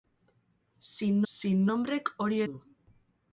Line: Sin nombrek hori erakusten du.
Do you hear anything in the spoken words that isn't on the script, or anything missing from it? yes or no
yes